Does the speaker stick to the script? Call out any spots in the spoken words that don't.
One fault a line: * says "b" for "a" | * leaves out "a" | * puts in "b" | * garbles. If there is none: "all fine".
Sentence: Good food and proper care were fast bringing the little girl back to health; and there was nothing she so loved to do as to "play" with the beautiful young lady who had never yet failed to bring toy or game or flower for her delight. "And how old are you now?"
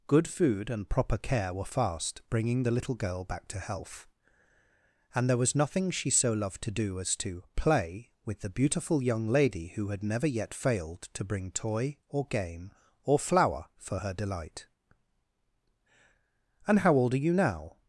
all fine